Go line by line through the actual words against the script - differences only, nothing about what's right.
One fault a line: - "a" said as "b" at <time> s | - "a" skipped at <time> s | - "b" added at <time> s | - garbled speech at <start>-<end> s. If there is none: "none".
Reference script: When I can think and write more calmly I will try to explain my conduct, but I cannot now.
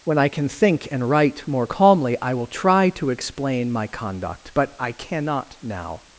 none